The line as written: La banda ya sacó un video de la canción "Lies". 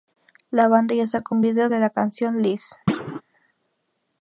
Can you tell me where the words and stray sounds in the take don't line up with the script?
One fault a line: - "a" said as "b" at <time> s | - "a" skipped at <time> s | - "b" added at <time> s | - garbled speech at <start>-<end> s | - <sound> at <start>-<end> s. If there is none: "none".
- thud at 2.9-3.2 s